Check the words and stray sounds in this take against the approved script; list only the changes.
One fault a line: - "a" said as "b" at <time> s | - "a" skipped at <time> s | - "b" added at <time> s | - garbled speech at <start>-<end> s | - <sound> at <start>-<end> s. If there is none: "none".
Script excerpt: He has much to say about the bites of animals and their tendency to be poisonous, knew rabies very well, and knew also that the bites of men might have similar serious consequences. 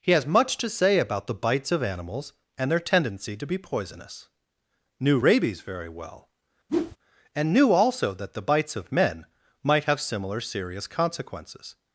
- whoosh at 6.7-7.0 s